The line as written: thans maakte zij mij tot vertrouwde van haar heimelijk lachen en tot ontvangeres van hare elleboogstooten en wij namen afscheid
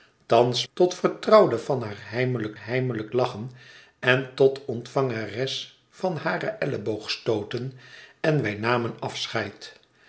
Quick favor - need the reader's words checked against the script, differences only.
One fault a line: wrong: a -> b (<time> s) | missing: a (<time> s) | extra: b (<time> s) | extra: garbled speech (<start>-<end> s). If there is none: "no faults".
missing: maakte zij mij (0.7 s)
extra: heimelijk (2.5 s)